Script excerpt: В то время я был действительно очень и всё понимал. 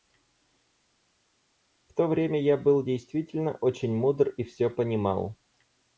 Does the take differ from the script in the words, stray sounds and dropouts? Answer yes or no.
yes